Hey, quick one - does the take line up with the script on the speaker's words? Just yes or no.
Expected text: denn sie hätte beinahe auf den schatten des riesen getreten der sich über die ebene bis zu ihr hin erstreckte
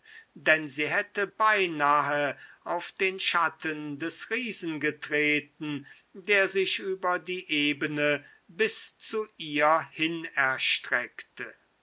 yes